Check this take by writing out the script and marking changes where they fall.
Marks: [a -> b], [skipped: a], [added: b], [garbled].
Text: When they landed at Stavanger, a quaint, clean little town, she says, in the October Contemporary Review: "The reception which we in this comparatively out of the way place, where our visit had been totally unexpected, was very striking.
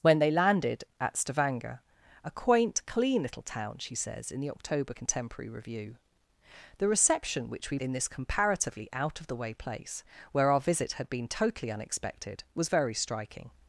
When they landed at Stavanger, a quaint, clean little town, she says, in the October Contemporary Review: "The reception which we in this comparatively out of the way place, where our visit had been totally unexpected, was very striking.